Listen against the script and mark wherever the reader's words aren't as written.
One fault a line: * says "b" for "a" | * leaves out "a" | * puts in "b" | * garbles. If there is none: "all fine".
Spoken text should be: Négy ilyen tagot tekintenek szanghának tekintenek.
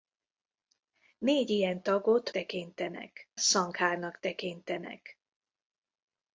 all fine